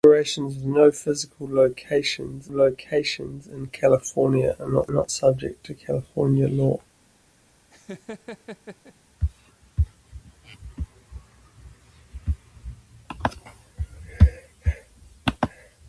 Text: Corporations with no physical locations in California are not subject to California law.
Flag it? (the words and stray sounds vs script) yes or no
yes